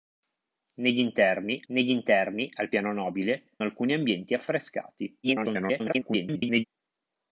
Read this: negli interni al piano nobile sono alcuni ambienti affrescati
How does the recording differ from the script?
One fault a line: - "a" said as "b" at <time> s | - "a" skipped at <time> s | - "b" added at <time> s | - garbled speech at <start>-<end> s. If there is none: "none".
- "negli interni" added at 1.7 s
- "sono" skipped at 3.6 s
- garbled speech at 5.2-6.6 s